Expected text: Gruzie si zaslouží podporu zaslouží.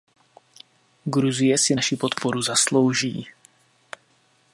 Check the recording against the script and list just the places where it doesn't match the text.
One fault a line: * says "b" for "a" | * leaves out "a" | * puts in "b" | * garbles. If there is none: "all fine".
* says "naši" for "zaslouží"